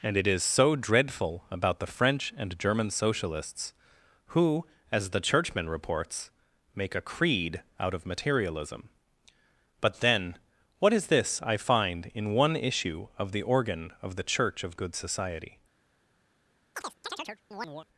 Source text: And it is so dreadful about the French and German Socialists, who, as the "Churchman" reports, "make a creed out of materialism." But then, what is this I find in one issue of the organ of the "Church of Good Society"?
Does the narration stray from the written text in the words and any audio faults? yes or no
yes